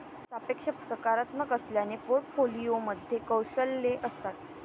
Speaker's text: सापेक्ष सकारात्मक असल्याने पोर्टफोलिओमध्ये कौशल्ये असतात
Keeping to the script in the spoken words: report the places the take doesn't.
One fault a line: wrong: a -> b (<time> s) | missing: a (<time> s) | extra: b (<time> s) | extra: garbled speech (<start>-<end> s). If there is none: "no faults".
no faults